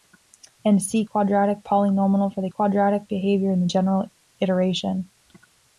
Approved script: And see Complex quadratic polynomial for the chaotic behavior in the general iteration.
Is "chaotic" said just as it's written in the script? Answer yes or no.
no